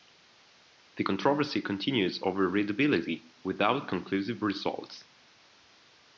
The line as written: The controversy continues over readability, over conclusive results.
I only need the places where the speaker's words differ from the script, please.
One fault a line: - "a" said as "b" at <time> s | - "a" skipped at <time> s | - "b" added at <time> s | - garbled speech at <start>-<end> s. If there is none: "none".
- "over" said as "without" at 3.4 s